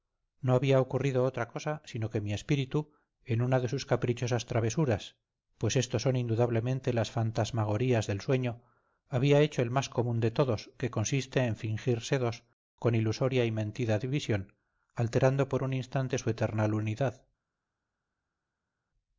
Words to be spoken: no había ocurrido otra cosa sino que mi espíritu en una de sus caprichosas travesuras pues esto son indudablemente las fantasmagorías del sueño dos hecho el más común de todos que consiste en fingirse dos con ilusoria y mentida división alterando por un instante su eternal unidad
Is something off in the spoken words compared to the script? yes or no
yes